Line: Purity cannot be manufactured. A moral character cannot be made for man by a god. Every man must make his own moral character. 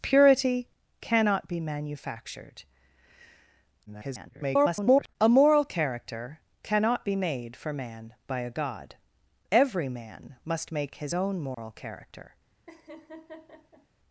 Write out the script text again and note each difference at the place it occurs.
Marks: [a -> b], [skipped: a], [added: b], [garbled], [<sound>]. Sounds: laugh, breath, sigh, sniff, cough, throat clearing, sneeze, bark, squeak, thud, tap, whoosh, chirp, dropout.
Purity cannot be manufactured. [garbled] A moral character cannot be made for man by a god. Every man must make his own moral [dropout] character. [laugh]